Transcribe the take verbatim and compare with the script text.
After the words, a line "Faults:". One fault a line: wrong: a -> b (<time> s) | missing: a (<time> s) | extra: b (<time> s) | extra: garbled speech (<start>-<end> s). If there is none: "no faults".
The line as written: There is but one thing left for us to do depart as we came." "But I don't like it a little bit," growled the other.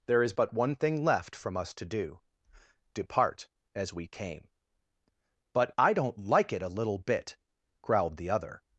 There is but one thing left from us to do depart as we came." "But I don't like it a little bit," growled the other.
Faults:
wrong: for -> from (1.4 s)